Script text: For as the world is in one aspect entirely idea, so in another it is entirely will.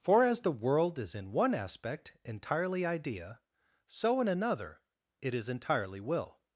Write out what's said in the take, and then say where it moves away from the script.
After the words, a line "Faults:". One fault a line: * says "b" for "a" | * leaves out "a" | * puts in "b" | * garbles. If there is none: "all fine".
For as the world is in one aspect entirely idea, so in another it is entirely will.
Faults:
all fine